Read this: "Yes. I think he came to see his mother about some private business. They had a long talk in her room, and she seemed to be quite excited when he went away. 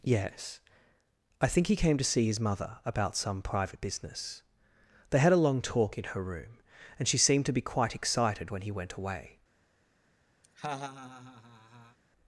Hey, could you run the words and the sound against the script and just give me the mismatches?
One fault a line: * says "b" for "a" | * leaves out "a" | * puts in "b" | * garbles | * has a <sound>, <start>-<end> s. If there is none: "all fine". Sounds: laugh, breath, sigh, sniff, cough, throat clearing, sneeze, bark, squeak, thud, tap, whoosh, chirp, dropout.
* has a laugh, 10.4-12.0 s